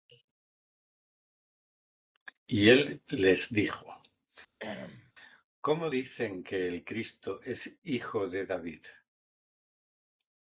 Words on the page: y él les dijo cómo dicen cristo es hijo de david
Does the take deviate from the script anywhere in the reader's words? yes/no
yes